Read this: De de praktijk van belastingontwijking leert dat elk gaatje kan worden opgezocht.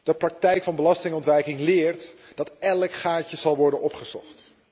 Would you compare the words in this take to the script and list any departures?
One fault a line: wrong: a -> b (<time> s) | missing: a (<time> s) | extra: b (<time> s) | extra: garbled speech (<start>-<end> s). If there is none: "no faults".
missing: de (0.1 s)
wrong: kan -> zal (3.4 s)